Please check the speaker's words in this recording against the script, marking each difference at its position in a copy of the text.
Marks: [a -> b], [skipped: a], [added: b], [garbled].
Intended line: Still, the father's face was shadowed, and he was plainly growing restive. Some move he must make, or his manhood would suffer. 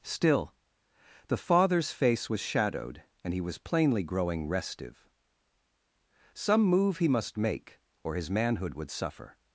Still, the father's face was shadowed, and he was plainly growing restive. Some move he must make, or his manhood would suffer.